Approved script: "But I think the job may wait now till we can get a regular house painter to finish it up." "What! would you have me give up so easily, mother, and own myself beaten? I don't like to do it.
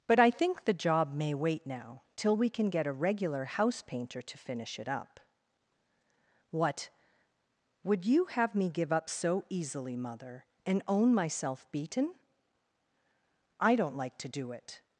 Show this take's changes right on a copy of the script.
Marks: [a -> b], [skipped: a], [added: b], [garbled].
"But I think the job may wait now till we can get a regular house painter to finish it up." "What! would you have me give up so easily, mother, and own myself beaten? I don't like to do it.